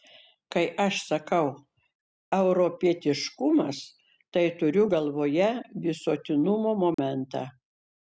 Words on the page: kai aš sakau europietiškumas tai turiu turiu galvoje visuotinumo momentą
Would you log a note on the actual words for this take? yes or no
yes